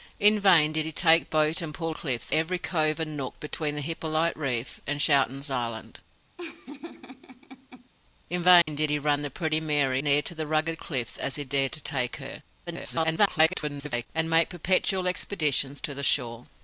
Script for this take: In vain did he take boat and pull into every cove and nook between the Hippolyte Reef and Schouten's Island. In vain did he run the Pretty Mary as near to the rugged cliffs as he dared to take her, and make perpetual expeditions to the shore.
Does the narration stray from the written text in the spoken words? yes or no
yes